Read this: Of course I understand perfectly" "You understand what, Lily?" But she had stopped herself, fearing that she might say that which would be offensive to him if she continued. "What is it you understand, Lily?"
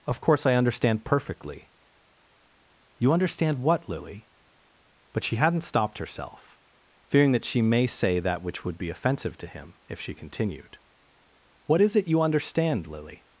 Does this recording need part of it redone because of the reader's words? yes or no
yes